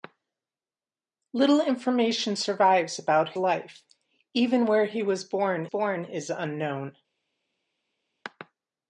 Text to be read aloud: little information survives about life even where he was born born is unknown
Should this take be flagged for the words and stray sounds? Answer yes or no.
no